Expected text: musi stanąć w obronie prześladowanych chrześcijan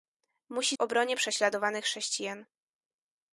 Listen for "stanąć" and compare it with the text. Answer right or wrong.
wrong